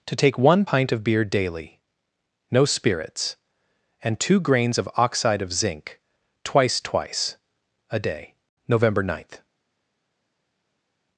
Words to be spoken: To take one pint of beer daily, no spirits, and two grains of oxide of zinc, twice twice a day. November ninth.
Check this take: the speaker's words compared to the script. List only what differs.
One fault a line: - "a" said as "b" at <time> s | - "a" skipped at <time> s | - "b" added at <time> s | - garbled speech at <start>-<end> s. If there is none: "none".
none